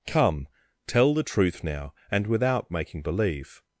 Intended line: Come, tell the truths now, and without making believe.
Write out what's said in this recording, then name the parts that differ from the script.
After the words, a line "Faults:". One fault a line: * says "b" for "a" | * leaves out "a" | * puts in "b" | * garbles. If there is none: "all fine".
Come, tell the truth now, and without making believe.
Faults:
* says "truth" for "truths"